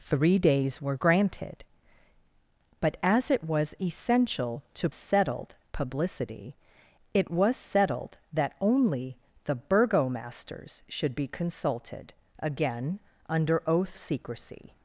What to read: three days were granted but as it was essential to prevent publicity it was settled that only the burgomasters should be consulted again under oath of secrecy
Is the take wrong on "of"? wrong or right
wrong